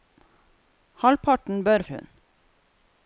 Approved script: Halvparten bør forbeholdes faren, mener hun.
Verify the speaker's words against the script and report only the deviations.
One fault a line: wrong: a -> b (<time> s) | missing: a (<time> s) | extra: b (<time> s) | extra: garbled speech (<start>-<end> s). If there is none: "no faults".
missing: forbeholdes faren mener (1.9 s)